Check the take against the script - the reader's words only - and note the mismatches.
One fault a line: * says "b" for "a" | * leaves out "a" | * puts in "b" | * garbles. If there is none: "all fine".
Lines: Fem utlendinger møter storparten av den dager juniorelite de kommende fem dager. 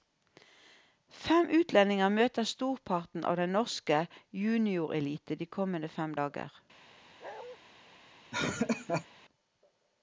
* says "norske" for "dager"